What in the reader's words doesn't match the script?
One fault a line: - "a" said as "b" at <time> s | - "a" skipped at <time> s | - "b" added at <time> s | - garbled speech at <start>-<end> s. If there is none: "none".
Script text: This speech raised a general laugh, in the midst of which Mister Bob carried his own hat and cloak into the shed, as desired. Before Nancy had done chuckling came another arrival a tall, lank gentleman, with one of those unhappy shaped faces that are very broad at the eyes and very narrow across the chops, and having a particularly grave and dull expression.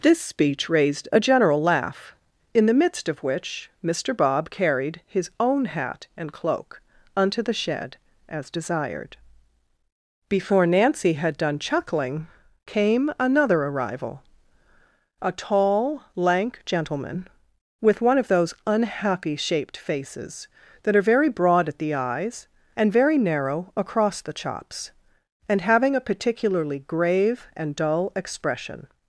- "into" said as "unto" at 7.2 s